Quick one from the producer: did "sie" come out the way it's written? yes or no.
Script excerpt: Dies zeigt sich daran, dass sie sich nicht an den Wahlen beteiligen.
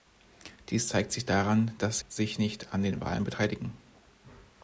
no